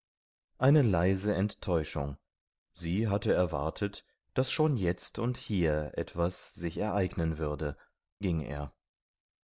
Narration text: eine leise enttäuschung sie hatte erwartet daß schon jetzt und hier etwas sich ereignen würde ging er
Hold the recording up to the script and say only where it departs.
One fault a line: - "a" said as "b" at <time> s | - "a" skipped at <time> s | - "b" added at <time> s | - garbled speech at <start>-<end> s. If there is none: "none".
none